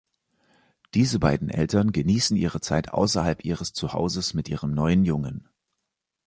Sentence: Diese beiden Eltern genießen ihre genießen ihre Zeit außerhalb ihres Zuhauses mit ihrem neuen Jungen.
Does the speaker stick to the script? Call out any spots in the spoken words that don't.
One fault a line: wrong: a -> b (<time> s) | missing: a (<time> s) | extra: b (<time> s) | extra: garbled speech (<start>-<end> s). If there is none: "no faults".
missing: genießen ihre (2.6 s)